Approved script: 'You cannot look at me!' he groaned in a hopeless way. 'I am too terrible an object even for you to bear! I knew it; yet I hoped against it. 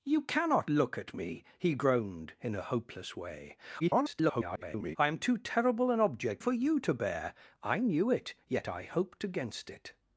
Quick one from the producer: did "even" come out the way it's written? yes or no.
no